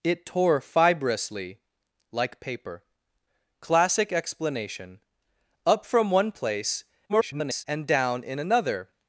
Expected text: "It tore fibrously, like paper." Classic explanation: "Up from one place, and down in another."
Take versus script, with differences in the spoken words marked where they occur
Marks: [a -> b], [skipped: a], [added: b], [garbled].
"It tore fibrously, like paper." Classic explanation: "Up from one place, [garbled] and down in another."